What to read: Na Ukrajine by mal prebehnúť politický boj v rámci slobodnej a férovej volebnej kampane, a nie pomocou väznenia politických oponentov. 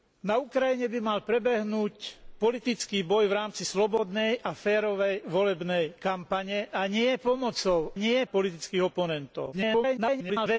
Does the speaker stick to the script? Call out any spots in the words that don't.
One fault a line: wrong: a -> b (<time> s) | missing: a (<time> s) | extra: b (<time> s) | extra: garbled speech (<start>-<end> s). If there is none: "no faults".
wrong: väznenia -> nie (8.0 s)
extra: garbled speech (9.5-10.6 s)